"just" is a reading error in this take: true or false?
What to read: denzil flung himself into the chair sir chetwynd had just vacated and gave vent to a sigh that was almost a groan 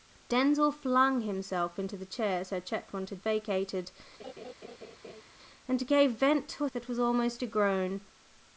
true